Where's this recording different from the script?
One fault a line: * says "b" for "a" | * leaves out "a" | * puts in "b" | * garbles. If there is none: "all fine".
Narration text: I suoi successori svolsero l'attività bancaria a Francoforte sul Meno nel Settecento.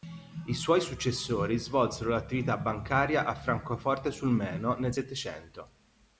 all fine